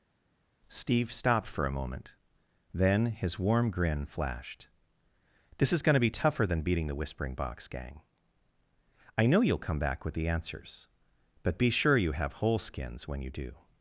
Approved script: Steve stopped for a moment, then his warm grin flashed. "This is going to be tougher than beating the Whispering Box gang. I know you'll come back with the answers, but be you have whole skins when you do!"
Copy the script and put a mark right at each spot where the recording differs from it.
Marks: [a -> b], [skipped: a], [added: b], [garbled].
Steve stopped for a moment, then his warm grin flashed. "This is going to be tougher than beating the Whispering Box gang. I know you'll come back with the answers, but be [added: sure] you have whole skins when you do!"